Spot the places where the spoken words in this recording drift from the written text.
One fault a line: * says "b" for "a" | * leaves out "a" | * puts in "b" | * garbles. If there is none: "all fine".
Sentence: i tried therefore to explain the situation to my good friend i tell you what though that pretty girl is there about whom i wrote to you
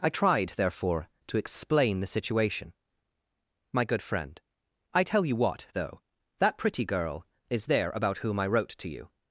* leaves out "to"